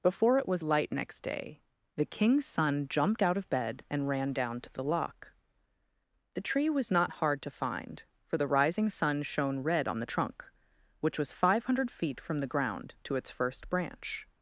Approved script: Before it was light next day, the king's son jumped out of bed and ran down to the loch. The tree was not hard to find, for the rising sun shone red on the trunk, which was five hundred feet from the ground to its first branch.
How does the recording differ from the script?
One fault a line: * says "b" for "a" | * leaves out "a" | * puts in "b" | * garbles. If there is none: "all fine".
all fine